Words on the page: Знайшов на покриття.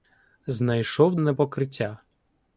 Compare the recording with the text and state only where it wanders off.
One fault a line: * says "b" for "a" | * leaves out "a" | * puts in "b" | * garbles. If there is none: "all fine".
all fine